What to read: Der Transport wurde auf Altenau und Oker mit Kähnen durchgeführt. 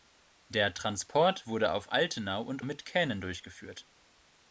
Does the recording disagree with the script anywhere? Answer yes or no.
yes